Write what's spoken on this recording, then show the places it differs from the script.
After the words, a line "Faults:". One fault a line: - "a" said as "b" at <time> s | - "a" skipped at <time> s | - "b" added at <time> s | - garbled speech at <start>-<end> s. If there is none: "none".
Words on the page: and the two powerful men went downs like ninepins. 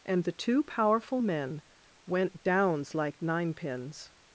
and the two powerful men went downs like ninepins.
Faults:
none